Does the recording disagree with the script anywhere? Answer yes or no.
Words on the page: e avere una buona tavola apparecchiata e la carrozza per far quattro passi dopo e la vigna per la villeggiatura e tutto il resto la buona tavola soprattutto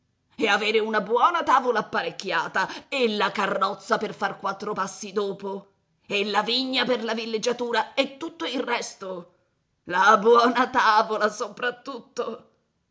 no